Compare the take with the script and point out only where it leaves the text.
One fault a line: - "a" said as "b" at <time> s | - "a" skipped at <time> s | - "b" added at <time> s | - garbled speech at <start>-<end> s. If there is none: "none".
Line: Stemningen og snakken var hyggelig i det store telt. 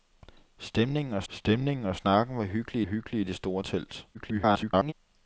- "stemningen og" added at 1.3 s
- "hyggelig" added at 2.8 s
- garbled speech at 4.1-4.9 s